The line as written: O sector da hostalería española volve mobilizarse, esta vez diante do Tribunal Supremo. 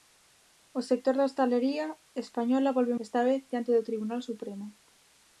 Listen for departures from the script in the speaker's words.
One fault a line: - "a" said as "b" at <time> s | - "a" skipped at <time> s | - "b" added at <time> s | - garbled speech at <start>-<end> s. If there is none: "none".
- "mobilizarse" skipped at 3.0 s